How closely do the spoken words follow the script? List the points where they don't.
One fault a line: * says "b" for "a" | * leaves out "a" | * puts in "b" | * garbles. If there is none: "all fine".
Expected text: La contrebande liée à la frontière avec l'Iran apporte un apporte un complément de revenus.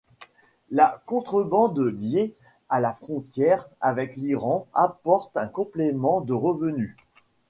* leaves out "apporte un"